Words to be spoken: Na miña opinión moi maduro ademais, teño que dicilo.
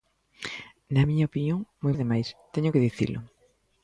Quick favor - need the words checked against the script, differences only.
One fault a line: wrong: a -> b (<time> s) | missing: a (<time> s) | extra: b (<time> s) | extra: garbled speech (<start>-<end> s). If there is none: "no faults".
missing: maduro (1.9 s)